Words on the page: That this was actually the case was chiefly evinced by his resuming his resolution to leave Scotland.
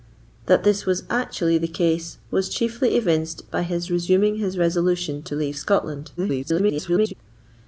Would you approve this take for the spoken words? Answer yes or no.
no